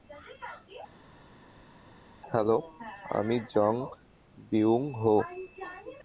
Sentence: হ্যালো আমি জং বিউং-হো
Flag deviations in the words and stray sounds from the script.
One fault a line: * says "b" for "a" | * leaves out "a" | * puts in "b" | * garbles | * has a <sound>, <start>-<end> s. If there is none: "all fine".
all fine